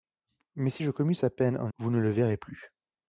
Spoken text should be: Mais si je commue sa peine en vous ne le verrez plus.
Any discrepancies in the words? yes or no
no